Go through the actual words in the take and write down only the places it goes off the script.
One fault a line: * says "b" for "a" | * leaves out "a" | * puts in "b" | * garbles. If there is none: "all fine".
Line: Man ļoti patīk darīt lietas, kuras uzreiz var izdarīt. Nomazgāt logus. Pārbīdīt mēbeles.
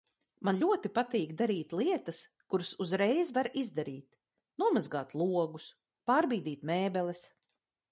all fine